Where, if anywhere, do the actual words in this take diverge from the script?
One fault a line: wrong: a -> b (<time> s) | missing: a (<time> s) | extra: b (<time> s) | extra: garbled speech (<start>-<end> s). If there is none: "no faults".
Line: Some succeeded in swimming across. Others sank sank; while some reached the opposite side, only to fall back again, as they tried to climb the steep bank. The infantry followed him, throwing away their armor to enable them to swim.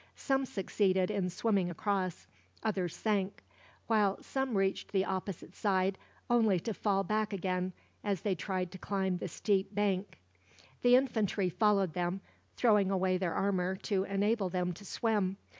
missing: sank (3.4 s)
wrong: him -> them (11.9 s)